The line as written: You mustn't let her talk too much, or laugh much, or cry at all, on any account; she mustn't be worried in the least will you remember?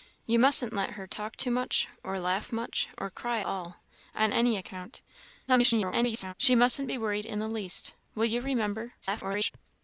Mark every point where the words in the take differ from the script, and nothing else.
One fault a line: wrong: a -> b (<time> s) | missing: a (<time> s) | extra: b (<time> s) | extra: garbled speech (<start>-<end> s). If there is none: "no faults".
missing: at (3.4 s)
extra: garbled speech (5.5-6.3 s)
extra: garbled speech (9.0-9.5 s)